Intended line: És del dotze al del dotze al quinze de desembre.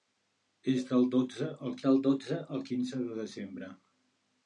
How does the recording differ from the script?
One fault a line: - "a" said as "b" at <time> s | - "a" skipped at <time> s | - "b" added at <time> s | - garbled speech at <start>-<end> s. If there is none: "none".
none